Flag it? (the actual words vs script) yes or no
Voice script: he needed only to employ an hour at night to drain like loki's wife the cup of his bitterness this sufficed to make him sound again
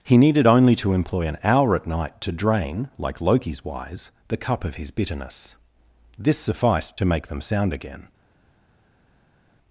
yes